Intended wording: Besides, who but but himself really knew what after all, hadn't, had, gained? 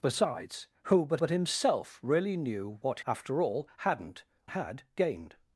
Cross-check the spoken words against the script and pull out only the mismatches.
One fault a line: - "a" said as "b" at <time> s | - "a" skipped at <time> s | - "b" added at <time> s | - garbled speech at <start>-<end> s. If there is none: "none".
none